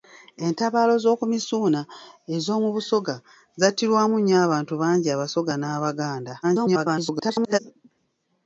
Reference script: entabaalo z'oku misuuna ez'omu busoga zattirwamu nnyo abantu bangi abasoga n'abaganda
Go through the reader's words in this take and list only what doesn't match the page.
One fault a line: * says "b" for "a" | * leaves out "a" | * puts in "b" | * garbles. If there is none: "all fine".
* garbles